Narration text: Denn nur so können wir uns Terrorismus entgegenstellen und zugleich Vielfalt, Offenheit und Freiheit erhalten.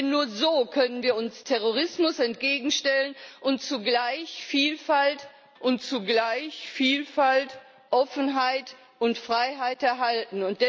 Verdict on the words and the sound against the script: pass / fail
fail